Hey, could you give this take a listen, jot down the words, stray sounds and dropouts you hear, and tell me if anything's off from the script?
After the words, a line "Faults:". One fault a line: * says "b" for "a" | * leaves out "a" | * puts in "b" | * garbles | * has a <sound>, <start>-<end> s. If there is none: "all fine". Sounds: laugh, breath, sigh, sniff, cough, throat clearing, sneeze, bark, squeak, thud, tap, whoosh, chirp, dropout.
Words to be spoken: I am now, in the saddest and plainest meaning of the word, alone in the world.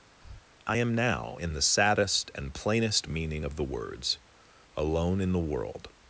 I am now, in the saddest and plainest meaning of the words, alone in the world.
Faults:
* has a breath, 0.2-0.5 s
* says "words" for "word"